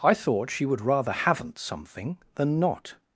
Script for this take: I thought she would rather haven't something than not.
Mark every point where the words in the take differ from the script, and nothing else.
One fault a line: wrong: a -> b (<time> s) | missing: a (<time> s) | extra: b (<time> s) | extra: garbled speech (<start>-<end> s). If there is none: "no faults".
no faults